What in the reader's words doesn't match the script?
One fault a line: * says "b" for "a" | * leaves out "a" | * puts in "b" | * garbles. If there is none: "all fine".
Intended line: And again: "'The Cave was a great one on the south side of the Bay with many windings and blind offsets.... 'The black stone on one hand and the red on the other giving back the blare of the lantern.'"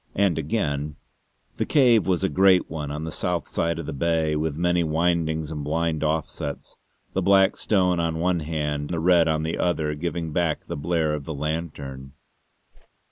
* leaves out "and"